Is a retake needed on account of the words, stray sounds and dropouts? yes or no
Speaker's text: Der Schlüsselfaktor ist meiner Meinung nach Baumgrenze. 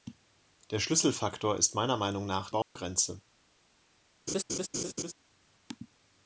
yes